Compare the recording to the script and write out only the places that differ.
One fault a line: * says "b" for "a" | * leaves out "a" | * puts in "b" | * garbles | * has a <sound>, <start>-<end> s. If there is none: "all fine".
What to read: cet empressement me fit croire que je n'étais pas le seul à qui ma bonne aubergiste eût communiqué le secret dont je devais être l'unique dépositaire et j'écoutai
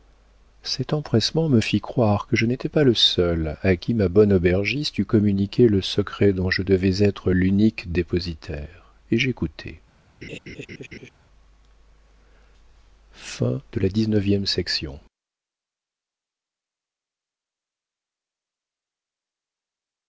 * has a laugh, 10.2-11.1 s